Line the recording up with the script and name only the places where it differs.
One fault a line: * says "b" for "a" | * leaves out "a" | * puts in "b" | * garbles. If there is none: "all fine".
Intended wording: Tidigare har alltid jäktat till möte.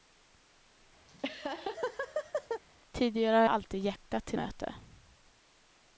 all fine